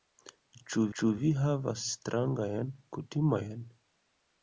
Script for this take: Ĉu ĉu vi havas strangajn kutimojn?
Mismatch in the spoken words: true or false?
false